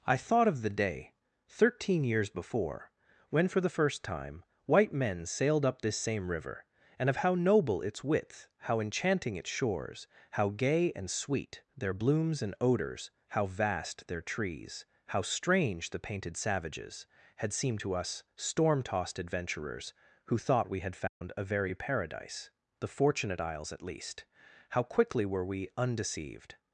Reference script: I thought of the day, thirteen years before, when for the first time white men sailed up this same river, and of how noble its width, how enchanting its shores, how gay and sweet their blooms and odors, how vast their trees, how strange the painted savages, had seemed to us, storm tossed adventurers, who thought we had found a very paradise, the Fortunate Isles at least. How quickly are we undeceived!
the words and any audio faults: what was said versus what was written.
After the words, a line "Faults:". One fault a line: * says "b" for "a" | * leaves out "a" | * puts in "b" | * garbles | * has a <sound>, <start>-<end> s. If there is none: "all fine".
I thought of the day, thirteen years before, when for the first time white men sailed up this same river, and of how noble its width, how enchanting its shores, how gay and sweet their blooms and odors, how vast their trees, how strange the painted savages, had seemed to us, storm tossed adventurers, who thought we had found a very paradise, the Fortunate Isles at least. How quickly were we undeceived!
Faults:
* has a dropout, 21.1-21.2 s
* says "were" for "are"